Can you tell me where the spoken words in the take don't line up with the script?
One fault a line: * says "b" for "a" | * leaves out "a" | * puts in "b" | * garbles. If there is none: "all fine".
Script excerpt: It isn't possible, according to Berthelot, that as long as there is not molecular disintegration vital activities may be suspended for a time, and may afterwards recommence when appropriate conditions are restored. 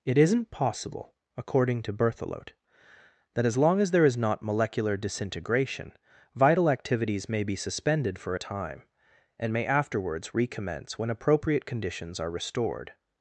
all fine